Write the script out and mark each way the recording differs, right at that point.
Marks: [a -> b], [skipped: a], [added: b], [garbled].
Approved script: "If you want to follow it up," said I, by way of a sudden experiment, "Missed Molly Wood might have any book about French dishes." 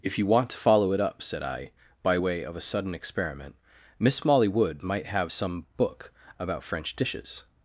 "If you want to follow it up," said I, by way of a sudden experiment, ["Missed -> Miss] Molly Wood might have [any -> some] book about French dishes."